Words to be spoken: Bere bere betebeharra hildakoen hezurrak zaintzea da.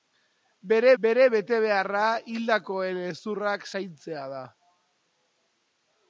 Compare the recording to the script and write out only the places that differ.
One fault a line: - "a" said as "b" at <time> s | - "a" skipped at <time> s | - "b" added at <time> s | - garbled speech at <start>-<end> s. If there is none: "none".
none